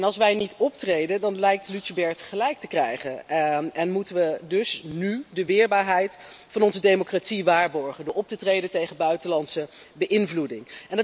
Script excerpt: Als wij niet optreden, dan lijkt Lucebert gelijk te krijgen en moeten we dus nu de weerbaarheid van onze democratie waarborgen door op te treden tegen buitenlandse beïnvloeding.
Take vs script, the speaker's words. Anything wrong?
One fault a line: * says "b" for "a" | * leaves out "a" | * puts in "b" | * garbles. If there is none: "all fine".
all fine